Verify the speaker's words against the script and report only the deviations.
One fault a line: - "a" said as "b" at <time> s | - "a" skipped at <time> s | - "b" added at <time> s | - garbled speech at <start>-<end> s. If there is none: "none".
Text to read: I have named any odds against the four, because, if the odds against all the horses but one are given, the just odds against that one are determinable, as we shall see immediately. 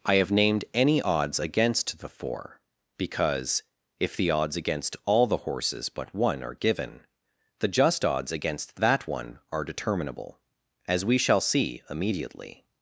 none